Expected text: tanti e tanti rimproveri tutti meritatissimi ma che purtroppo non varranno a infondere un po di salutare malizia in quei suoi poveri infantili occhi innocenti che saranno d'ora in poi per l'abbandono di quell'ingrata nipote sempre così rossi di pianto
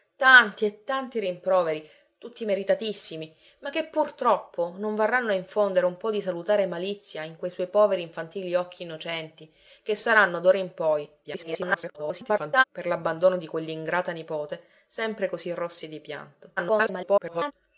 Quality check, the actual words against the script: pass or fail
fail